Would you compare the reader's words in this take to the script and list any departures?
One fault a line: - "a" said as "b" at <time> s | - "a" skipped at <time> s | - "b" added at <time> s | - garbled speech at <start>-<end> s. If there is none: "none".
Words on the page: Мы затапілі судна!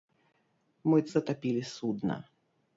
none